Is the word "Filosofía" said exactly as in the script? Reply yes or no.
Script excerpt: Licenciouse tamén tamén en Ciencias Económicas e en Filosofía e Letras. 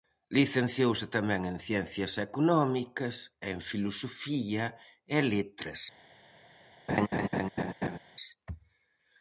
yes